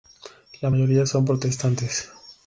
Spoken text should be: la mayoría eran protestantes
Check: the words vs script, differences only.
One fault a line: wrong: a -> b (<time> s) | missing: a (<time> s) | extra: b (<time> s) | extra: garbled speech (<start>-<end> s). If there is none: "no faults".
wrong: eran -> son (1.1 s)